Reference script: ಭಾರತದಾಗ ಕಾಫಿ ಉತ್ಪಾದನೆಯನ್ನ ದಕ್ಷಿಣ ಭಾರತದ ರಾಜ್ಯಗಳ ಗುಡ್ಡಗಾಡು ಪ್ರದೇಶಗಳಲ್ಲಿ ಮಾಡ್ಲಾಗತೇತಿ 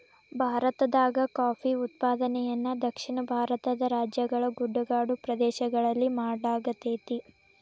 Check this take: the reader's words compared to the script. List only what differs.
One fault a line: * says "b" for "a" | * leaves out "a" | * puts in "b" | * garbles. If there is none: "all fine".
all fine